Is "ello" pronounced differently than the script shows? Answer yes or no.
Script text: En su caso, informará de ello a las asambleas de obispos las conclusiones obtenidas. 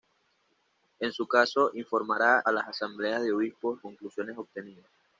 yes